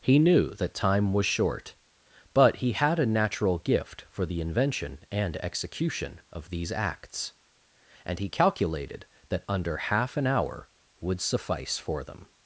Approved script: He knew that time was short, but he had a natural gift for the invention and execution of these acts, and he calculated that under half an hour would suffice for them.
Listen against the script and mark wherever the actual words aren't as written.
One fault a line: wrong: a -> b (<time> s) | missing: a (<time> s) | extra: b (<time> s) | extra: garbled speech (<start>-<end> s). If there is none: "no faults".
no faults